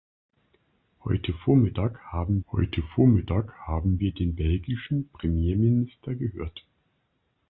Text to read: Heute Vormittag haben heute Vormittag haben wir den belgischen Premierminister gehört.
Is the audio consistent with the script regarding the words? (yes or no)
yes